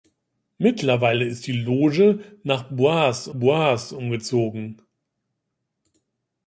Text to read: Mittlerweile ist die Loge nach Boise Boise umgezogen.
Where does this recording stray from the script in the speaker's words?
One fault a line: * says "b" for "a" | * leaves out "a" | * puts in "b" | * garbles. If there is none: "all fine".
all fine